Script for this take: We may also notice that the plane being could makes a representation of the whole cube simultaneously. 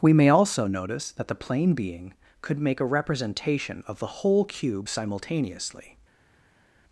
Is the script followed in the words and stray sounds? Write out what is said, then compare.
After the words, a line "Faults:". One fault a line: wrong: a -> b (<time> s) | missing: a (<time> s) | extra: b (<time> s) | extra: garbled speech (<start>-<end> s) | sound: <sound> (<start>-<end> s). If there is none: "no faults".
We may also notice that the plane being could make a representation of the whole cube simultaneously.
Faults:
wrong: makes -> make (2.6 s)